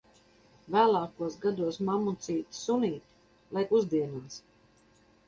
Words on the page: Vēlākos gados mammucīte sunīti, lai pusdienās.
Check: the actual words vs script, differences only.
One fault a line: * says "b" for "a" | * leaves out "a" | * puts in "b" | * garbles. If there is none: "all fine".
all fine